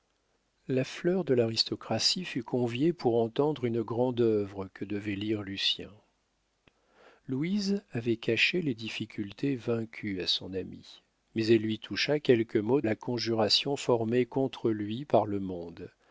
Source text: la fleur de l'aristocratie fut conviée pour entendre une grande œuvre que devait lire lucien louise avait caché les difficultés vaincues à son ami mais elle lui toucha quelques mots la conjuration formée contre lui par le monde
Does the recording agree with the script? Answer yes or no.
yes